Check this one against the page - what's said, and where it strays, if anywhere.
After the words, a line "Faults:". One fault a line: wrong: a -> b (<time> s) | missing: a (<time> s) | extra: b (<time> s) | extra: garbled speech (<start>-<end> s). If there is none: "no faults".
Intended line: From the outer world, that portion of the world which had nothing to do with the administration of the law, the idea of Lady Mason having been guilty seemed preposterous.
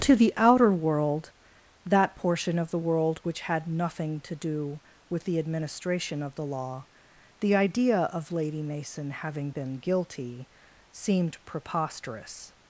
To the outer world, that portion of the world which had nothing to do with the administration of the law, the idea of Lady Mason having been guilty seemed preposterous.
Faults:
wrong: From -> To (0.0 s)